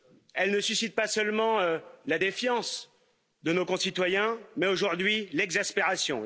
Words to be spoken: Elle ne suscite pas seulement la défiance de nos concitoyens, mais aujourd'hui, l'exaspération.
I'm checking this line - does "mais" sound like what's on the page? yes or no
yes